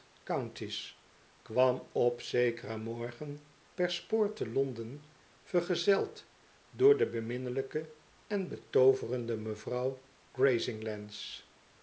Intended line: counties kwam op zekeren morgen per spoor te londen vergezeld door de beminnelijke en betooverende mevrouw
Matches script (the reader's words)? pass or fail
pass